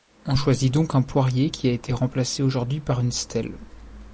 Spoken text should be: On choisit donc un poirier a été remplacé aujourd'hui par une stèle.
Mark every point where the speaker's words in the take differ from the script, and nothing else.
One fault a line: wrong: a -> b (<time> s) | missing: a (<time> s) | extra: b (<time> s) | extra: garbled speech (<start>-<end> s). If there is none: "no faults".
extra: qui (1.5 s)